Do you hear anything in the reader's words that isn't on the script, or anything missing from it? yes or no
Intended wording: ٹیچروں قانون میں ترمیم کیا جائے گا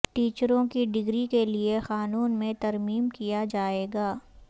yes